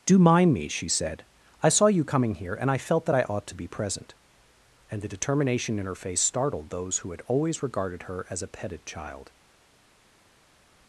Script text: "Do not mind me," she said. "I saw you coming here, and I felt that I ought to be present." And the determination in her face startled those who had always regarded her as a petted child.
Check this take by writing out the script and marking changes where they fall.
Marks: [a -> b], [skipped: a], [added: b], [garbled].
"Do [skipped: not] mind me," she said. "I saw you coming here, and I felt that I ought to be present." And the determination in her face startled those who had always regarded her as a petted child.